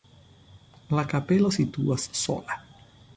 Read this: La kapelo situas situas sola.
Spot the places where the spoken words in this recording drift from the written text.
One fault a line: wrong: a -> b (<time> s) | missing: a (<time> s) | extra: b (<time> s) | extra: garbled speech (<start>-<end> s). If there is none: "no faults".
missing: situas (2.1 s)